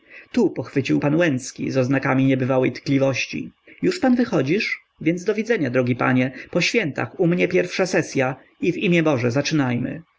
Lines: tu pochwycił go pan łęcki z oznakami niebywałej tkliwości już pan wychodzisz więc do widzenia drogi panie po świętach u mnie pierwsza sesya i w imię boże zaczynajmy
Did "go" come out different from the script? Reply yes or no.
yes